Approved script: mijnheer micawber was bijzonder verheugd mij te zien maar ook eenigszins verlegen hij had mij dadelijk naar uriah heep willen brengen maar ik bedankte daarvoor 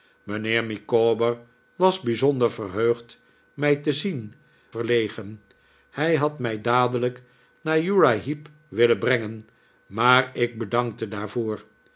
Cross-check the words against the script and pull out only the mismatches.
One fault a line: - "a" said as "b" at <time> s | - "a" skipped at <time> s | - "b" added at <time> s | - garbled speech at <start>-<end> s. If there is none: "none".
- "maar ook eenigszins" skipped at 4.3 s